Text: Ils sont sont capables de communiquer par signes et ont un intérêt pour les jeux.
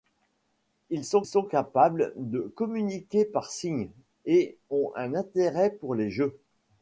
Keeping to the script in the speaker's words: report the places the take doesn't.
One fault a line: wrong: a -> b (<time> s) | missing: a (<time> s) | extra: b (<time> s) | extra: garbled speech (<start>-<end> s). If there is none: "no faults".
no faults